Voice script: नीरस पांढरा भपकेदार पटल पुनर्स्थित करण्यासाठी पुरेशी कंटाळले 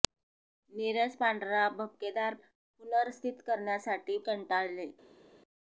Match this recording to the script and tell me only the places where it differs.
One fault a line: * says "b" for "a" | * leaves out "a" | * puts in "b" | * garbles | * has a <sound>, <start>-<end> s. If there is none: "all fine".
* leaves out "पटल"
* leaves out "पुरेशी"